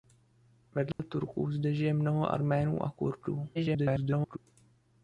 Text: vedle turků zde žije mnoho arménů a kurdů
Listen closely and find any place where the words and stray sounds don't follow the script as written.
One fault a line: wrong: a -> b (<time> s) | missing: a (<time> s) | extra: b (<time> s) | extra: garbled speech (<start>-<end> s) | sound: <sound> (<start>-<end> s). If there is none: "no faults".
sound: dropout (0.9-1.0 s)
extra: garbled speech (3.5-4.4 s)